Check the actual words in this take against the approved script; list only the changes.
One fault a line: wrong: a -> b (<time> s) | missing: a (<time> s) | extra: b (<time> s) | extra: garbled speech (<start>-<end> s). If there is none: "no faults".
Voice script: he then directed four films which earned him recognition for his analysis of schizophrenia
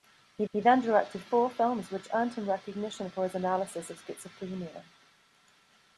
extra: he (0.5 s)